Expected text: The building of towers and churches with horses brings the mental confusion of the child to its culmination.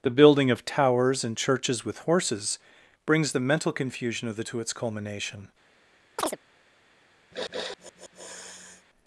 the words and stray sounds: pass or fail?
fail